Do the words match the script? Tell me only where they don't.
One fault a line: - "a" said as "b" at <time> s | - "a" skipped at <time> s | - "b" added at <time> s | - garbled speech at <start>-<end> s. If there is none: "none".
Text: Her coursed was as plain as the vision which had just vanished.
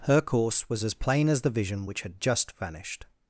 - "coursed" said as "course" at 0.2 s